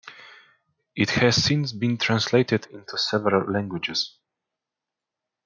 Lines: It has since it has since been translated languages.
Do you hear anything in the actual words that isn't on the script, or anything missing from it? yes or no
yes